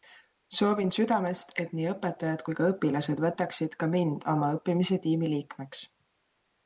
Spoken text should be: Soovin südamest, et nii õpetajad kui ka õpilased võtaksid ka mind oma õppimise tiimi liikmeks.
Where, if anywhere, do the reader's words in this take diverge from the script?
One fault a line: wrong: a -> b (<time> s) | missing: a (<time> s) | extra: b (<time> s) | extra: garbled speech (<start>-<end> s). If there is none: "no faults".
no faults